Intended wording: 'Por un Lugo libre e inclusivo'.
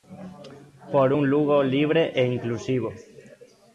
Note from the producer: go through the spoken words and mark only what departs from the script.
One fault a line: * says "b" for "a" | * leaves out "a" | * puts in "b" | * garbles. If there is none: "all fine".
all fine